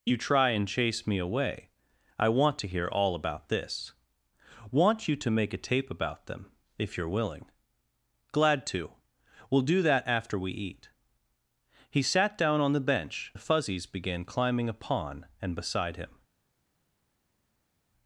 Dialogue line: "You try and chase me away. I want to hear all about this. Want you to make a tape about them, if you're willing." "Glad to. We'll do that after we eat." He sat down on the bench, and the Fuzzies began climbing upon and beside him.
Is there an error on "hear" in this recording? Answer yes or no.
no